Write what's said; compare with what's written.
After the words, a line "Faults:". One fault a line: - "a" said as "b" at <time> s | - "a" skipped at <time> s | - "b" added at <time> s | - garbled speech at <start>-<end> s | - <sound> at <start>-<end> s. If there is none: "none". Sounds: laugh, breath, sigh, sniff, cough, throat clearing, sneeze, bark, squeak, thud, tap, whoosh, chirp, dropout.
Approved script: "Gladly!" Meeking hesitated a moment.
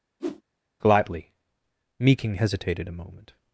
"Gladly!" Meeking hesitated a moment.
Faults:
- whoosh at 0.2-0.4 s